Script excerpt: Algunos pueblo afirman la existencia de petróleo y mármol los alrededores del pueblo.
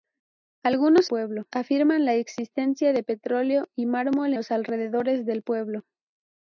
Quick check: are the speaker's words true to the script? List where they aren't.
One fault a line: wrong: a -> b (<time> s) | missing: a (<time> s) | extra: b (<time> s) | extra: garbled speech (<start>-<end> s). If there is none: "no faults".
no faults